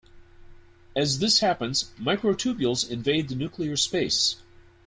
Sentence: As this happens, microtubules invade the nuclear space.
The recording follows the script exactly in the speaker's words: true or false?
true